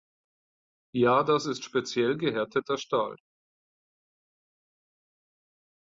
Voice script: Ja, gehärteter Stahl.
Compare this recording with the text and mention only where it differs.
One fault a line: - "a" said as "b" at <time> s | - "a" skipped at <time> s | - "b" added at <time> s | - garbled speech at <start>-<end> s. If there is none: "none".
- "das ist speziell" added at 1.2 s